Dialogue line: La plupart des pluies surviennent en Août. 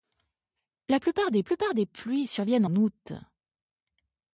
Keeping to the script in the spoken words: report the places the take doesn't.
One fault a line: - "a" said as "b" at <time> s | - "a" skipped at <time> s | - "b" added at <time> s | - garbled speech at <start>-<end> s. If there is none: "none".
- "plupart des" added at 1.4 s
- "en" skipped at 2.6 s